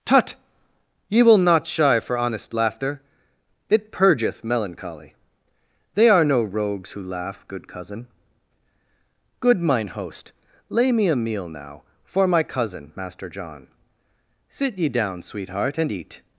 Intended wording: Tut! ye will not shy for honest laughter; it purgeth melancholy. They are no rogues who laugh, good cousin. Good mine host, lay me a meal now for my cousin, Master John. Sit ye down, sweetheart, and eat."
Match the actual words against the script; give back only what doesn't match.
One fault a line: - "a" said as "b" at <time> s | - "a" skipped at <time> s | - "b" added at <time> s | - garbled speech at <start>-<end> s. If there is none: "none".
none